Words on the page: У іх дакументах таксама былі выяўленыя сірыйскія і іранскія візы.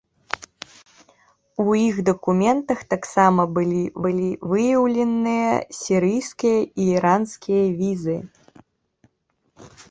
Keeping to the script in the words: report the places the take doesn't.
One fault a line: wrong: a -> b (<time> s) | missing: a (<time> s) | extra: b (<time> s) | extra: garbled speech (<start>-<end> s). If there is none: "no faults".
extra: былі (4.1 s)